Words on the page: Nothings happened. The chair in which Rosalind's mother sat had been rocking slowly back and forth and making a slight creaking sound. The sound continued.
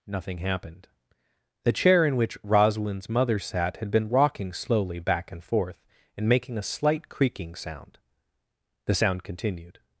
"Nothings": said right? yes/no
no